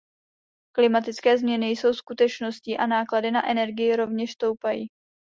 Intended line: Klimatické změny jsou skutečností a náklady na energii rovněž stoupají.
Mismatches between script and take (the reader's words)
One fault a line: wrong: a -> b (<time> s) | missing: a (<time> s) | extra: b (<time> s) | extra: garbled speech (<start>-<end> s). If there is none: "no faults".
no faults